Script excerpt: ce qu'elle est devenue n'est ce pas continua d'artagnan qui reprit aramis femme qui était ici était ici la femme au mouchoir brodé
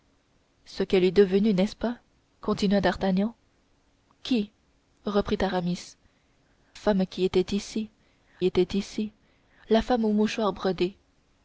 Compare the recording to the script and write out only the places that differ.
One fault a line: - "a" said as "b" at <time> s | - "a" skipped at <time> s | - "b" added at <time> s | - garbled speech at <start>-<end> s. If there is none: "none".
none